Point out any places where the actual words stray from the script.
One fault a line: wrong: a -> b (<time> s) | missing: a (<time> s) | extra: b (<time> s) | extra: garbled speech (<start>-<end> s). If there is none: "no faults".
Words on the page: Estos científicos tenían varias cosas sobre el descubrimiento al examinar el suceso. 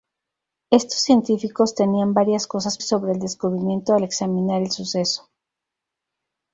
no faults